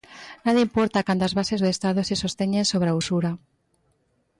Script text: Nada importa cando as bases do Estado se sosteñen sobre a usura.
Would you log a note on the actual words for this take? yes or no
no